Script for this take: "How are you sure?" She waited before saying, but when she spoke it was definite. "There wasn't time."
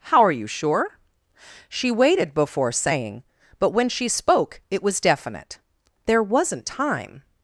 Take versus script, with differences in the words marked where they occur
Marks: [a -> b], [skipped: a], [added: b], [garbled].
"How are you sure?" She waited before saying, but when she spoke it was definite. "There wasn't time."